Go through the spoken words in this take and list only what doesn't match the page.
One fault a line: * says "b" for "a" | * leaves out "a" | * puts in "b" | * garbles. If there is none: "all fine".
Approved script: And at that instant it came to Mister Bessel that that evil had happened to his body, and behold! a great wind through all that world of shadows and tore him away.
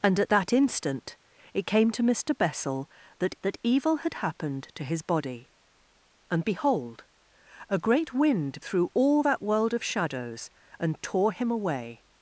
all fine